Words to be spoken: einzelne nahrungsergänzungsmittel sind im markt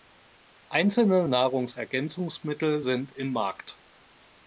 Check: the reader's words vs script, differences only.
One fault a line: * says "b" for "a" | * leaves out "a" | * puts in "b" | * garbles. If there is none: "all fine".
all fine